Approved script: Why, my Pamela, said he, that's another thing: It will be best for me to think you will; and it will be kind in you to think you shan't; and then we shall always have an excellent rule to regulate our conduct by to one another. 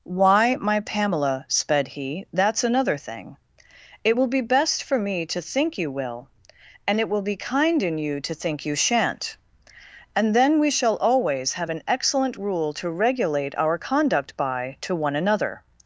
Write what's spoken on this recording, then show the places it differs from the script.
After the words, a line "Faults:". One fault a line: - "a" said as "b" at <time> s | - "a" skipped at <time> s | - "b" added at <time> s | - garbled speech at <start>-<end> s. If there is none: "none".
Why, my Pamela, sped he, that's another thing: It will be best for me to think you will; and it will be kind in you to think you shan't; and then we shall always have an excellent rule to regulate our conduct by to one another.
Faults:
- "said" said as "sped" at 1.5 s